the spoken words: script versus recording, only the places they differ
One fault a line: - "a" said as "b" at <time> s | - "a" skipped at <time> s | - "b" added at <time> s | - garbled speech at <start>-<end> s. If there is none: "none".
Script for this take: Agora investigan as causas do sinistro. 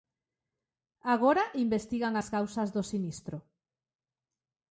none